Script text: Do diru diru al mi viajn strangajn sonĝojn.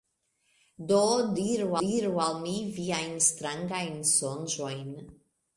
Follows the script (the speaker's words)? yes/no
yes